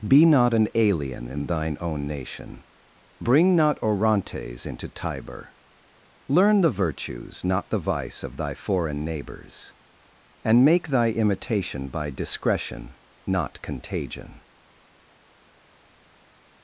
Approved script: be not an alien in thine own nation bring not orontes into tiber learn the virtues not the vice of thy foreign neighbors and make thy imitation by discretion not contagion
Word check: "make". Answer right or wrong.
right